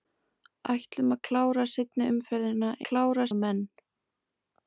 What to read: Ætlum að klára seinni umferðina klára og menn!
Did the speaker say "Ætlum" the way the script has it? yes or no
yes